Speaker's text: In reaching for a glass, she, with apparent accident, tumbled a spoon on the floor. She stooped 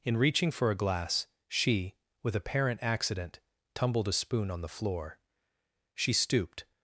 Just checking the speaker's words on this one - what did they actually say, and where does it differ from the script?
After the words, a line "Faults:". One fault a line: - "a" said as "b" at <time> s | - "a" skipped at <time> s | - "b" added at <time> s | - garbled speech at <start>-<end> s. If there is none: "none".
In reaching for a glass, she, with apparent accident, tumbled a spoon on the floor. She stooped
Faults:
none